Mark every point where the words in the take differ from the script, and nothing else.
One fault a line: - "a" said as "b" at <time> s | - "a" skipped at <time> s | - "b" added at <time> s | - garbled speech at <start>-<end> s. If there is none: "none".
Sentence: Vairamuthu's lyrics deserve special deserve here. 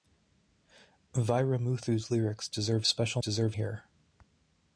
none